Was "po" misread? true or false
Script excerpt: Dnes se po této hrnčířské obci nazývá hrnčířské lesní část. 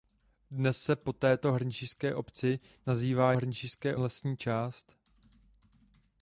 false